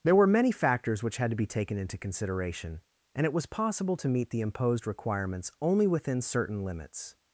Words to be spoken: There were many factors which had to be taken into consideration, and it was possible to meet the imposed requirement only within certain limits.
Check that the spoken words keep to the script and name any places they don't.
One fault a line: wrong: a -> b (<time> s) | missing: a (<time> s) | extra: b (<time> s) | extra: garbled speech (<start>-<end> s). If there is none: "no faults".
wrong: requirement -> requirements (4.9 s)